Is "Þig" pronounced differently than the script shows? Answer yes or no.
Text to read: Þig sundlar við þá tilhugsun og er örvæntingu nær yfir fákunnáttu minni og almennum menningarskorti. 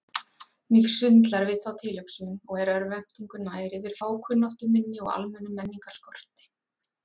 yes